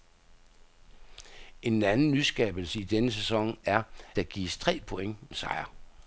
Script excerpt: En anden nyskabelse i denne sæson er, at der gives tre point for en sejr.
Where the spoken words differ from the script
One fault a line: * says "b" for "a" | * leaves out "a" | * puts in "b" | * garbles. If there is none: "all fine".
* leaves out "at"
* leaves out "for"